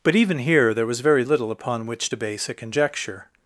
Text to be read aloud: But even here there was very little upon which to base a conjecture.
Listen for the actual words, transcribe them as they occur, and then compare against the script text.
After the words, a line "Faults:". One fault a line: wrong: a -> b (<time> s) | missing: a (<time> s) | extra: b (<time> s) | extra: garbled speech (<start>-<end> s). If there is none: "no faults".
But even here there was very little upon which to base a conjecture.
Faults:
no faults